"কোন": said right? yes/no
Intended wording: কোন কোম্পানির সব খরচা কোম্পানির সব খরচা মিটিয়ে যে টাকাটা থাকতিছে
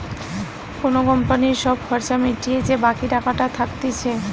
yes